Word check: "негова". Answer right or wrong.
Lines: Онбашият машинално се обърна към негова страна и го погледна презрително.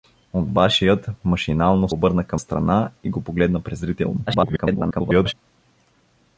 wrong